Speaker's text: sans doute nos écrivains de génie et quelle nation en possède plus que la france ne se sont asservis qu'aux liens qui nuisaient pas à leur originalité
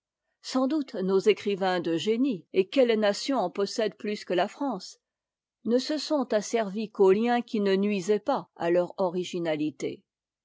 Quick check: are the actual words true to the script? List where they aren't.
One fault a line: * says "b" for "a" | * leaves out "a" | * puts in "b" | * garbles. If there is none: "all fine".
* puts in "ne"